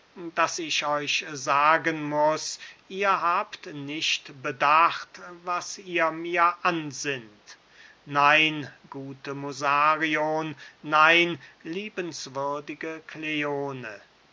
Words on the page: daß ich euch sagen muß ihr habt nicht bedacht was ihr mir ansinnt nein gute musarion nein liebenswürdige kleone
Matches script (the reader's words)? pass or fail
pass